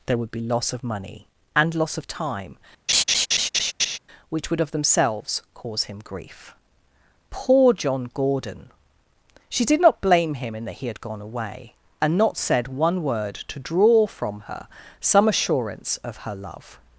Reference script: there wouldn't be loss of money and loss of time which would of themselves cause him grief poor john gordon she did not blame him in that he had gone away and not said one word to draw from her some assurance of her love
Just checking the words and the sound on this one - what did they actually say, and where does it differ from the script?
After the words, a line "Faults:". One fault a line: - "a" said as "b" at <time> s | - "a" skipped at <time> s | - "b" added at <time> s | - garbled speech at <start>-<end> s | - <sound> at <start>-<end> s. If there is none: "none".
there would be loss of money and loss of time which would of themselves cause him grief poor john gordon she did not blame him in that he had gone away and not said one word to draw from her some assurance of her love
Faults:
- "wouldn't" said as "would" at 0.2 s
- laugh at 2.9-4.0 s